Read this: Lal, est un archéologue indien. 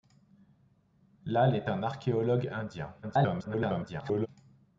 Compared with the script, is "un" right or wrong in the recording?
right